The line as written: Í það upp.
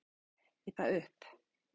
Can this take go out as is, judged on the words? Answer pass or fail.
pass